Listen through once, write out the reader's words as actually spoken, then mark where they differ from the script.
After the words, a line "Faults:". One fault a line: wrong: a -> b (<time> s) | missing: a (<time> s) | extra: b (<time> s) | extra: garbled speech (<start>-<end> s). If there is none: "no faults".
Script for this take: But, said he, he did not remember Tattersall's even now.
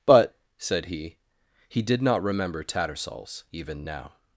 But, said he, he did not remember Tattersall's even now.
Faults:
no faults